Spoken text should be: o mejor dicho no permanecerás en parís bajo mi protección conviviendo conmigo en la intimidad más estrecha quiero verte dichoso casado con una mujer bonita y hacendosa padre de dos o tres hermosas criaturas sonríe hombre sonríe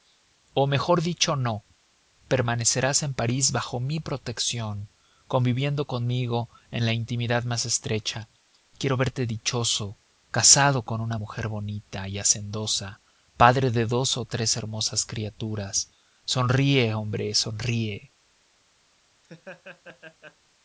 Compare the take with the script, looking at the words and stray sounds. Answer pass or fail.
fail